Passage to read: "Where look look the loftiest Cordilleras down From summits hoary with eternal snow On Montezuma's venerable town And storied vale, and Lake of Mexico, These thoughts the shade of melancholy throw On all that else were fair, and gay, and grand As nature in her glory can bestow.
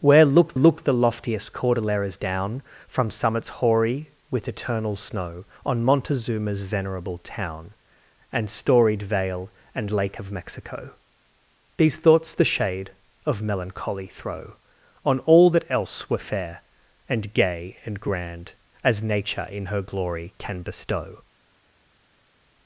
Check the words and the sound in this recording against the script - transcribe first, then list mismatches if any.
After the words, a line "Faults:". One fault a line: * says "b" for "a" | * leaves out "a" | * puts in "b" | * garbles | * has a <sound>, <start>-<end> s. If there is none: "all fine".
"Where look look the loftiest Cordilleras down From summits hoary with eternal snow On Montezuma's venerable town And storied vale, and Lake of Mexico, These thoughts the shade of melancholy throw On all that else were fair, and gay, and grand As nature in her glory can bestow.
Faults:
all fine